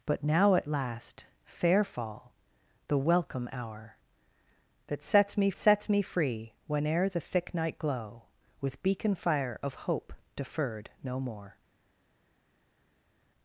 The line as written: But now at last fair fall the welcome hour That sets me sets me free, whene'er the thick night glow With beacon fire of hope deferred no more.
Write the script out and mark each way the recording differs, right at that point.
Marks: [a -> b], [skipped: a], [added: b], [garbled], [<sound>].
But now at last fair fall the welcome hour That sets me sets me free, whene'er the thick night glow With beacon fire of hope deferred no more.